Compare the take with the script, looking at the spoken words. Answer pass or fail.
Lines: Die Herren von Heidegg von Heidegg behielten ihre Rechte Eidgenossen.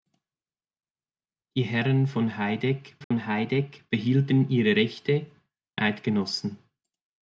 pass